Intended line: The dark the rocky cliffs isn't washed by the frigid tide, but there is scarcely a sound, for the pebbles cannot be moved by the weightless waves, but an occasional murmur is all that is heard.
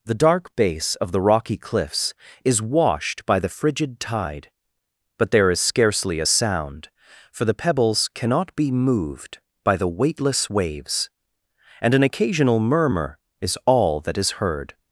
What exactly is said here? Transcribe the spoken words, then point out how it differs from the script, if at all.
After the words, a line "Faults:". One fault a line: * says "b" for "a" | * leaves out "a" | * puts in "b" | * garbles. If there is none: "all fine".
The dark base of the rocky cliffs is washed by the frigid tide, but there is scarcely a sound, for the pebbles cannot be moved by the weightless waves, and an occasional murmur is all that is heard.
Faults:
* puts in "base of"
* says "is" for "isn't"
* says "and" for "but"